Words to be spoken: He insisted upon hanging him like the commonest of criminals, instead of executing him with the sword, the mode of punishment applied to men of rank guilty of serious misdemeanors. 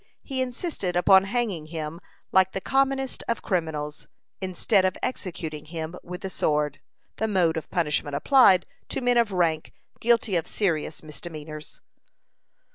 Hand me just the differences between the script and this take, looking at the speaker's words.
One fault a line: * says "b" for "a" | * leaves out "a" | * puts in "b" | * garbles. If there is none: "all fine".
all fine